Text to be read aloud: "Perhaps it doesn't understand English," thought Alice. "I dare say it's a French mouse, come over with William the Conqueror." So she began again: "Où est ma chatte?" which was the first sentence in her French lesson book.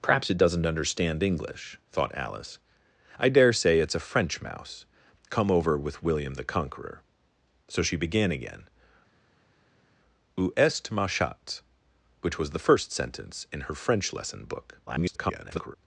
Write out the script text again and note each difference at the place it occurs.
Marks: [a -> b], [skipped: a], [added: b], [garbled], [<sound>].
"Perhaps it doesn't understand English," thought Alice. "I dare say it's a French mouse, come over with William the Conqueror." So she began again: "Où est ma chatte?" which was the first sentence in her French lesson book. [garbled]